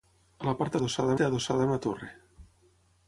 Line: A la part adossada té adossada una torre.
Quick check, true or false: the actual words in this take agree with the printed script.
true